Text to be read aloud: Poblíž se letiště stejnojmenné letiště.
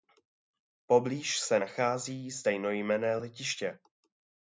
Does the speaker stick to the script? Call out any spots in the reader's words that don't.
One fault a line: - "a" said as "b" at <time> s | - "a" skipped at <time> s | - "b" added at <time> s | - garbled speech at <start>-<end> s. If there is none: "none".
- "letiště" said as "nachází" at 1.6 s